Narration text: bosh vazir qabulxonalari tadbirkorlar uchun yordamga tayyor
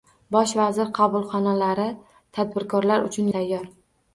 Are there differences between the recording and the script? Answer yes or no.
yes